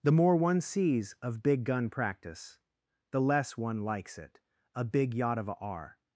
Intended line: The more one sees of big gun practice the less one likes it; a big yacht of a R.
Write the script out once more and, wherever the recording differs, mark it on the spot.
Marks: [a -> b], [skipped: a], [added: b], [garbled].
The more one sees of big gun practice the less one likes it; a big yacht of a R.